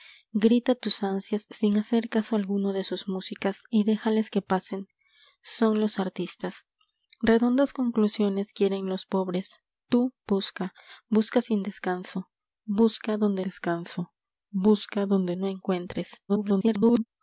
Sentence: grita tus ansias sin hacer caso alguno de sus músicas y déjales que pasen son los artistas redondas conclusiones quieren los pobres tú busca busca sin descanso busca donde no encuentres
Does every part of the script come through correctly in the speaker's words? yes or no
no